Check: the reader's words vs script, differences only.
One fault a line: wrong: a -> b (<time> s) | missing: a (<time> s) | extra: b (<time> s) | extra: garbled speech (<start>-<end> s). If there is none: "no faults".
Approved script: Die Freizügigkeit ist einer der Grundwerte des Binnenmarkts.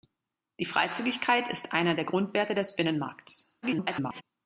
extra: garbled speech (3.6-4.2 s)